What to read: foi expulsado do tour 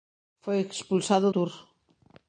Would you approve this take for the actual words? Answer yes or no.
no